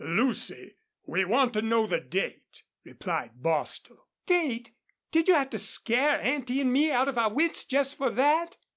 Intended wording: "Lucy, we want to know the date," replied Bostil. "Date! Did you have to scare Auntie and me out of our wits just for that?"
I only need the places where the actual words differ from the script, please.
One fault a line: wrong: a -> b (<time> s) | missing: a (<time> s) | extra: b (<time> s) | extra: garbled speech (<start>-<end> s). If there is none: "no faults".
no faults